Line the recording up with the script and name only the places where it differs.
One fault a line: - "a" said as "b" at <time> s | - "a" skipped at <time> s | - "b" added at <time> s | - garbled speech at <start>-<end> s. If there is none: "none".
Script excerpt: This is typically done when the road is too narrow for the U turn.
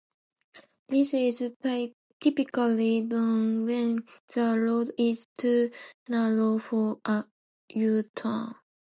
- "the" said as "a" at 7.0 s